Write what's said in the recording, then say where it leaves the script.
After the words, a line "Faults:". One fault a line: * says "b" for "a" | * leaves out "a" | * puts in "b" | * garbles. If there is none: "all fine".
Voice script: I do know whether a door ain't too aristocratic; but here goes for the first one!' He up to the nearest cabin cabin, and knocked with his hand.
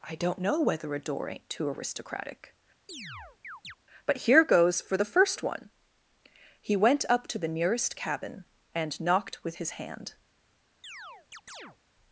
I don't know whether a door ain't too aristocratic; but here goes for the first one!' He went up to the nearest cabin, and knocked with his hand.
Faults:
* says "don't" for "do"
* puts in "went"
* leaves out "cabin"